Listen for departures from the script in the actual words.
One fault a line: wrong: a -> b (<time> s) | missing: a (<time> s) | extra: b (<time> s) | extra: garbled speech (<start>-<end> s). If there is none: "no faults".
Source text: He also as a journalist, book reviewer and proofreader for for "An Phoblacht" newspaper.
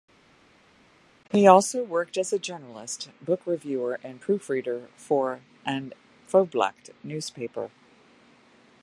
extra: worked (1.8 s)
missing: for (5.4 s)